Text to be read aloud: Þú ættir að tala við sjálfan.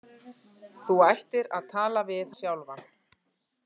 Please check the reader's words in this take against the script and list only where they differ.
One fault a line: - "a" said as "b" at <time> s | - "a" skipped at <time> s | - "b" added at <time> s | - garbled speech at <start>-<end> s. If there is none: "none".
none